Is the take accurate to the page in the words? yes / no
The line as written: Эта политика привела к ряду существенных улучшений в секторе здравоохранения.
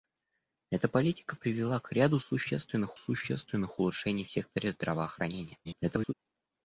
no